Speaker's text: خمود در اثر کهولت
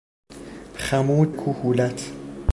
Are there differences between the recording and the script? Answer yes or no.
yes